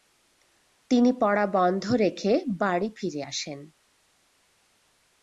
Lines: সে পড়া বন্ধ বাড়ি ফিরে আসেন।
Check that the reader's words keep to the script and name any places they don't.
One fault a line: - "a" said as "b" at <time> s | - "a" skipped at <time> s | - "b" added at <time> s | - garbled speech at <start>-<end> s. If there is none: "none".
- "সে" said as "তিনি" at 0.9 s
- "রেখে" added at 1.9 s